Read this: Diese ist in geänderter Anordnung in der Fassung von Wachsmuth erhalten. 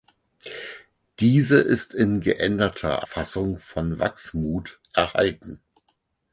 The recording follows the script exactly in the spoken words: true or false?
false